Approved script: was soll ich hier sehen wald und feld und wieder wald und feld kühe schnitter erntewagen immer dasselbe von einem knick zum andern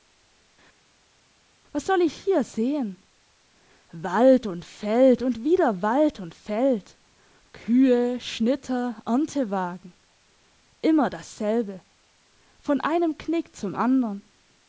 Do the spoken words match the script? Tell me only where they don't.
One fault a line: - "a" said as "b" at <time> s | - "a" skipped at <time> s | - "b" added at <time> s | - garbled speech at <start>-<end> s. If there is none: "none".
none